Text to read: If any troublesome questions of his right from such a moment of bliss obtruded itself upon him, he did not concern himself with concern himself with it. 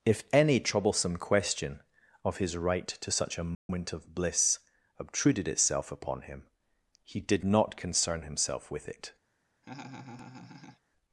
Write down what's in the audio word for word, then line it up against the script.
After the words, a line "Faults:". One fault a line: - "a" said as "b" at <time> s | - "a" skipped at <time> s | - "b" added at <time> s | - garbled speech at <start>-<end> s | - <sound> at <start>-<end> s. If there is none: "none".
If any troublesome question of his right to such a moment of bliss obtruded itself upon him, he did not concern himself with it.
Faults:
- "questions" said as "question" at 1.2 s
- "from" said as "to" at 2.9 s
- dropout at 3.5-3.7 s
- "concern himself with" skipped at 8.9 s
- laugh at 9.6-10.8 s